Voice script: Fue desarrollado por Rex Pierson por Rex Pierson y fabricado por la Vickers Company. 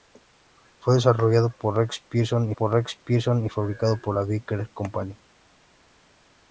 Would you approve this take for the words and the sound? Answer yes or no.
yes